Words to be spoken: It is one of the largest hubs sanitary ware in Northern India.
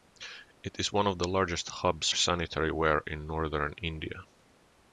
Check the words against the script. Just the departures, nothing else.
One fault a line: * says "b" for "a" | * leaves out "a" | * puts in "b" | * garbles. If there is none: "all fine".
all fine